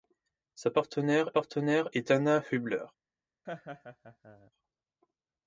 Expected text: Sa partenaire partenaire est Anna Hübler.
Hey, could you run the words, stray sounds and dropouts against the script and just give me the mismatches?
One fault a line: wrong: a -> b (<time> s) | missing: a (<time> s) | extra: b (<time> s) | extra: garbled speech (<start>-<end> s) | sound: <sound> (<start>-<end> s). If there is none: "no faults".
sound: laugh (3.5-4.5 s)